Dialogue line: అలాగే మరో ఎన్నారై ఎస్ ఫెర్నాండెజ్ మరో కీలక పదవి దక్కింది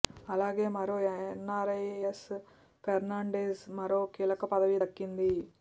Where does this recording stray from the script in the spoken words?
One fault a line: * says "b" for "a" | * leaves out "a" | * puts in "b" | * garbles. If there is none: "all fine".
all fine